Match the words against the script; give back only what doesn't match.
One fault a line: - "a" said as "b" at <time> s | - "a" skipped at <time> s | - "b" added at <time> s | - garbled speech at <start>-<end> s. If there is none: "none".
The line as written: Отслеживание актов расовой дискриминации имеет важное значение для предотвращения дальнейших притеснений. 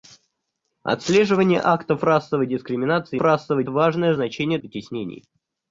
- "имеет" said as "расовой" at 3.2 s
- "для предотвращения дальнейших" skipped at 4.6 s